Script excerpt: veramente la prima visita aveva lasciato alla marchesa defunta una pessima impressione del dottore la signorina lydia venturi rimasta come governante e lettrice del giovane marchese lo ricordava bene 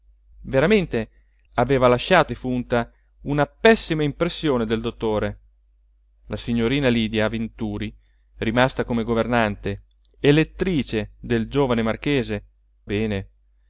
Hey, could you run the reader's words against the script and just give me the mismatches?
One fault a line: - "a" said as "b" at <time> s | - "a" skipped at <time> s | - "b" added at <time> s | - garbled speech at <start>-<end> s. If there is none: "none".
- "la prima visita" skipped at 1.1 s
- "alla marchesa" skipped at 2.3 s
- "lo ricordava" skipped at 12.4 s